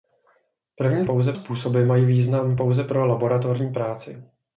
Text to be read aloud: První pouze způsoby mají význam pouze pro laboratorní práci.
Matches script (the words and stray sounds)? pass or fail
pass